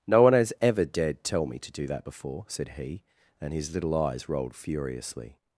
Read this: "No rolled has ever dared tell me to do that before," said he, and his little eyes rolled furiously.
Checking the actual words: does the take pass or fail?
fail